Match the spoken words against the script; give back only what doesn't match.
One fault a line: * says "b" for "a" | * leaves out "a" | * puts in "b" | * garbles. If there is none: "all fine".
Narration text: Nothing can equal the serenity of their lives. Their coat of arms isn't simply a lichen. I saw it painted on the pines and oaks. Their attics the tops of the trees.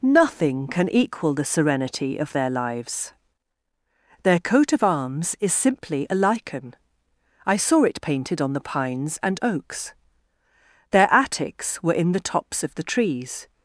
* says "is" for "isn't"
* puts in "were in"